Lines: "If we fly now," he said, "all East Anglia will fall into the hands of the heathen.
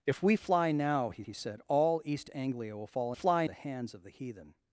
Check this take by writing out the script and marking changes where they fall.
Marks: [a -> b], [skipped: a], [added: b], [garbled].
"If we fly now," he [added: he] said, "all East Anglia will fall [into -> fly] the hands of the heathen.